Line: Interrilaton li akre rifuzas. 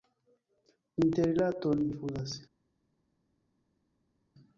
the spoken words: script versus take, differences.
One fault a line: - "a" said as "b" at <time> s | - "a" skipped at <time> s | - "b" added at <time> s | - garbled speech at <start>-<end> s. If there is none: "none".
- "li akre" skipped at 1.9 s